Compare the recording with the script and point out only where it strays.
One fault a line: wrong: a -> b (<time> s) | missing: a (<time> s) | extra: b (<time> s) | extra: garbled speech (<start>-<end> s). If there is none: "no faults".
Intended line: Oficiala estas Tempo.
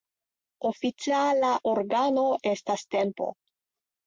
extra: organo (1.7 s)